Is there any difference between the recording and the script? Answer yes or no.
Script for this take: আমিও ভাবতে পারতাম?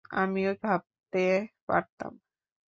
no